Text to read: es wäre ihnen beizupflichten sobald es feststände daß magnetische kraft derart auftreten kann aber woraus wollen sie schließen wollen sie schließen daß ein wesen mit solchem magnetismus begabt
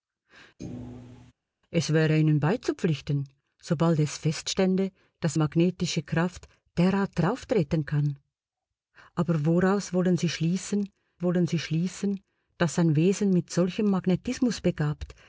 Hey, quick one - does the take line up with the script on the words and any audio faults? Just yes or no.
no